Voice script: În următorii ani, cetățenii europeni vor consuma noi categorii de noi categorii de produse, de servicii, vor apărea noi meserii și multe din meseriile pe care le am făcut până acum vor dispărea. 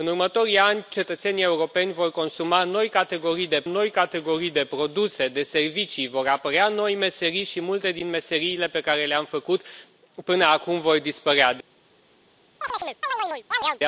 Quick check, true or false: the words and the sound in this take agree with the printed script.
false